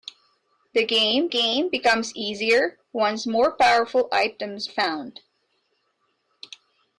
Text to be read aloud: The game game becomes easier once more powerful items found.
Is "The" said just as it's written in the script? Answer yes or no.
yes